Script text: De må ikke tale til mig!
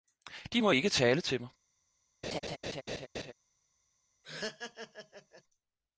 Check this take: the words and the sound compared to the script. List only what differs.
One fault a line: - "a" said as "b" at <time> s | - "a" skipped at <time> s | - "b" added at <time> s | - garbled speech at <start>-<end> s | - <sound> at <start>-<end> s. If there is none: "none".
- laugh at 2.2-3.3 s
- laugh at 4.2-5.4 s